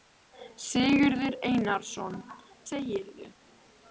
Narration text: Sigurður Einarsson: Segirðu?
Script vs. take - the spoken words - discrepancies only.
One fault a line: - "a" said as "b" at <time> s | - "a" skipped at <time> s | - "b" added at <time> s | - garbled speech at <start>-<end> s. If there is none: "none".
none